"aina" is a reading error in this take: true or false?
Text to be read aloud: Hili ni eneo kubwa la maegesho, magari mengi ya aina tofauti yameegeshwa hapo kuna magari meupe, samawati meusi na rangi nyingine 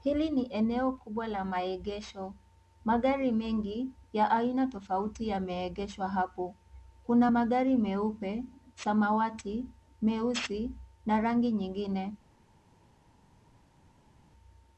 false